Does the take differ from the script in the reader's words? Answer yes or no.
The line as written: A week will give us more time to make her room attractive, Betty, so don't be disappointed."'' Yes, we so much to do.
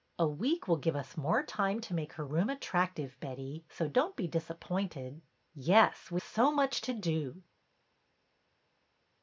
no